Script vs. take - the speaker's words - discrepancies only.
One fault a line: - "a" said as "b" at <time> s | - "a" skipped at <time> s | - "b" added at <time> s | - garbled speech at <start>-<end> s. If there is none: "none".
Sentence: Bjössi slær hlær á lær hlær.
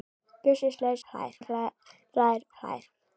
none